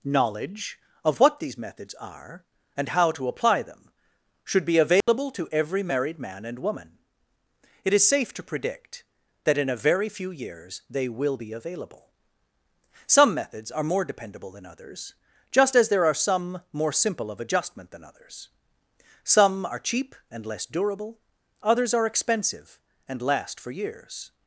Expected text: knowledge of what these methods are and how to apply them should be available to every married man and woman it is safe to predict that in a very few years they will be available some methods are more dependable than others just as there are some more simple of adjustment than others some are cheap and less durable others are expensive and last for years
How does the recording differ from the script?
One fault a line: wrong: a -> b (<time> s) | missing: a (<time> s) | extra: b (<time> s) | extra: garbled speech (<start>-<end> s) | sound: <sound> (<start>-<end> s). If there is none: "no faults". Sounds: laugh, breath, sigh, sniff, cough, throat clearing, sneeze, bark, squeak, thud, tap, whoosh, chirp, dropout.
sound: dropout (5.0-5.1 s)